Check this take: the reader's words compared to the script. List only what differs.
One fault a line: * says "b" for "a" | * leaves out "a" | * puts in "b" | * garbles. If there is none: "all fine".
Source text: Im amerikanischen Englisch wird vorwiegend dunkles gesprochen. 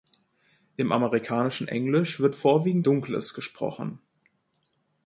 all fine